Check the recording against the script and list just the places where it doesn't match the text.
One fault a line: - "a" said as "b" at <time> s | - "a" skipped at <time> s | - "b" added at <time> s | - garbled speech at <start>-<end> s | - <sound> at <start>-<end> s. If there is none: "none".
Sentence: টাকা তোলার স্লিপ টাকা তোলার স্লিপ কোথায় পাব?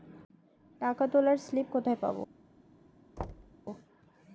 - "টাকা তোলার স্লিপ" skipped at 1.7 s
- thud at 3.2-3.5 s